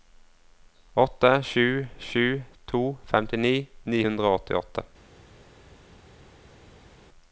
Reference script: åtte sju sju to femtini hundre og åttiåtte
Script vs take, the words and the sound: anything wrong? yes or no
yes